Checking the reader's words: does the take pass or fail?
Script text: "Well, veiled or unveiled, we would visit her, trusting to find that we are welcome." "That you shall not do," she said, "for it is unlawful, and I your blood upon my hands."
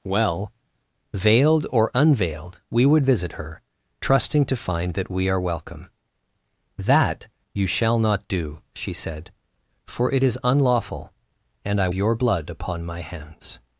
pass